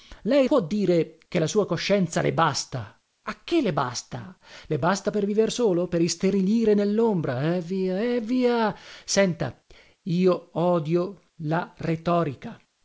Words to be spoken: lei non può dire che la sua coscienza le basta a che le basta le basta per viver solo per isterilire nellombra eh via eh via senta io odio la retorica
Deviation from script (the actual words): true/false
true